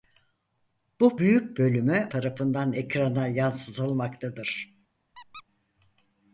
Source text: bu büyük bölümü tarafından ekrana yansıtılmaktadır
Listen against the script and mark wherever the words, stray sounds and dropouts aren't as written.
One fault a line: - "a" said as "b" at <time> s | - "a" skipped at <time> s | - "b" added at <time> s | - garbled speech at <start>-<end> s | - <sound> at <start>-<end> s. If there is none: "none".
- squeak at 5.1-5.4 s